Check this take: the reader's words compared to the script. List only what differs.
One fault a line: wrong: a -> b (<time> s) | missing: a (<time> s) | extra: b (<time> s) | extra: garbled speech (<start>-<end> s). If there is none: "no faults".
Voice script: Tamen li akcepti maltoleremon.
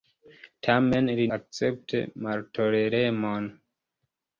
no faults